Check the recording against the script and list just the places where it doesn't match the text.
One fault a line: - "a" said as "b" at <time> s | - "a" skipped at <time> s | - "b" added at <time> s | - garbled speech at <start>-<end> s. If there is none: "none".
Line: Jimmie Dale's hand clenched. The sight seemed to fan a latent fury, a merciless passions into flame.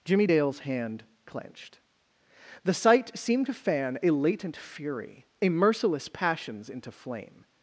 none